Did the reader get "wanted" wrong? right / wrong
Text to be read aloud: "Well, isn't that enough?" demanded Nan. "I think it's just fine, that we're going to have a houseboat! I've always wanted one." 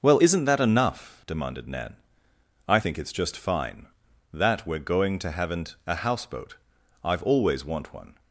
wrong